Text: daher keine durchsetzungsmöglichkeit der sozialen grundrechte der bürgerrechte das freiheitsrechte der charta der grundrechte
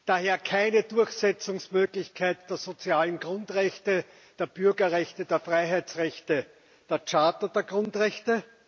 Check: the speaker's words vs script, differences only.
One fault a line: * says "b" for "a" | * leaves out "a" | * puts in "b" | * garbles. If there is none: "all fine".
* says "der" for "das"